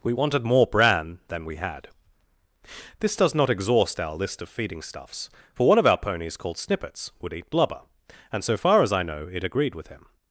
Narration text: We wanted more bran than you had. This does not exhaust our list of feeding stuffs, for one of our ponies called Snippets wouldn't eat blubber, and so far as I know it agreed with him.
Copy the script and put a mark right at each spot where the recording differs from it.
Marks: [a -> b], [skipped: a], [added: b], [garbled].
We wanted more bran than [you -> we] had. This does not exhaust our list of feeding stuffs, for one of our ponies called Snippets [wouldn't -> would] eat blubber, and so far as I know it agreed with him.